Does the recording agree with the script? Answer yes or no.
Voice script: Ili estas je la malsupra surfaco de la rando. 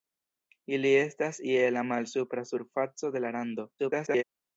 no